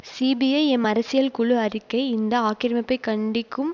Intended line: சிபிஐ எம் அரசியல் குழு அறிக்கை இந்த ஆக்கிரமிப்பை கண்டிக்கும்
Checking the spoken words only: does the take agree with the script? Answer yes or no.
yes